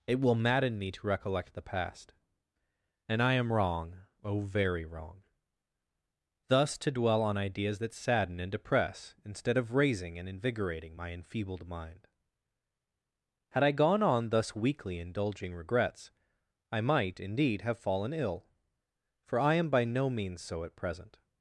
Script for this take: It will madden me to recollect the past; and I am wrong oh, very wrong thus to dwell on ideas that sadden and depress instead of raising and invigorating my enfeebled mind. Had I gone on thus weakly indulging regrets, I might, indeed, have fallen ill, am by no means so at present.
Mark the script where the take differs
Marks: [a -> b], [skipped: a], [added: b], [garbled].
It will madden me to recollect the past; and I am wrong oh, very wrong thus to dwell on ideas that sadden and depress instead of raising and invigorating my enfeebled mind. Had I gone on thus weakly indulging regrets, I might, indeed, have fallen ill, [added: for I] am by no means so at present.